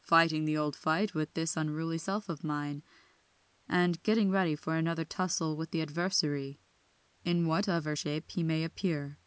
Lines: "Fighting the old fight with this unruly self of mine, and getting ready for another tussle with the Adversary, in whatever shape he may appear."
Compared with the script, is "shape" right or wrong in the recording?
right